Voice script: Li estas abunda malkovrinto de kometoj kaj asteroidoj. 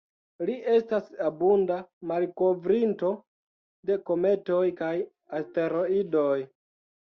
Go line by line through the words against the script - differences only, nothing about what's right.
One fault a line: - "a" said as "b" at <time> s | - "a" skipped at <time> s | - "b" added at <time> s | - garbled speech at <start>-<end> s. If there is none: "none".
none